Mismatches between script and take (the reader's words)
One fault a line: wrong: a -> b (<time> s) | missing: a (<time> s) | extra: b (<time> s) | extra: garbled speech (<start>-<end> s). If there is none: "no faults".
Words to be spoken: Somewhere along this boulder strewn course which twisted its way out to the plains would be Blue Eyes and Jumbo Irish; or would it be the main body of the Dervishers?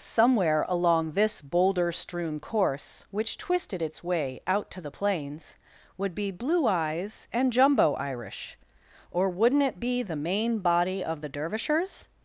wrong: would -> wouldn't (9.3 s)